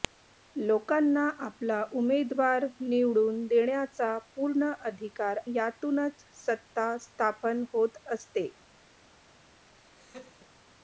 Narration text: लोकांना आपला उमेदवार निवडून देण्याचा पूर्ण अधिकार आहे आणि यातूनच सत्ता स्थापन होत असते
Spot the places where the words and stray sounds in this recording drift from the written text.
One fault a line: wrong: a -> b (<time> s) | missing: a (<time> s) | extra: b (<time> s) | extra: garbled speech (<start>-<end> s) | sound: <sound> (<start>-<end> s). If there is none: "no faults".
missing: आहे आणि (5.4 s)
sound: laugh (9.8-10.5 s)